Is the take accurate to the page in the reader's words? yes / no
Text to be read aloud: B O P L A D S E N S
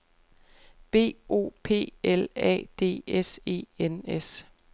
yes